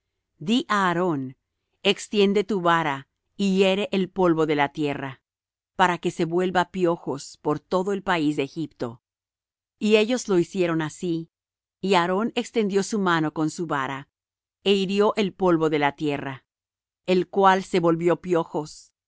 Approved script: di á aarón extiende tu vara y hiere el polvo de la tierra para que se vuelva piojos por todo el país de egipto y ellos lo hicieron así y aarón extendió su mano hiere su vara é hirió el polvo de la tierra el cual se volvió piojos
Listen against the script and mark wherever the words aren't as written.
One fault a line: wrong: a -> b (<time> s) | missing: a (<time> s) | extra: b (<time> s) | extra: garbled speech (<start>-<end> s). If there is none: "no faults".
wrong: hiere -> con (13.3 s)